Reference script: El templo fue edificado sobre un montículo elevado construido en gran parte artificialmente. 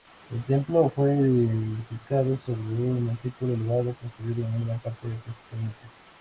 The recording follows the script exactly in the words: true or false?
true